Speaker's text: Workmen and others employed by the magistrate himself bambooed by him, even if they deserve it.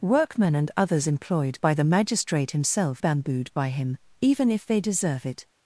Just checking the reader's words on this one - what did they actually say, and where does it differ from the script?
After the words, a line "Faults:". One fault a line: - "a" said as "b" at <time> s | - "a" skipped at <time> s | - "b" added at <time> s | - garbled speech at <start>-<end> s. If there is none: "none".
Workmen and others employed by the magistrate himself bambooed by him, even if they deserve it.
Faults:
none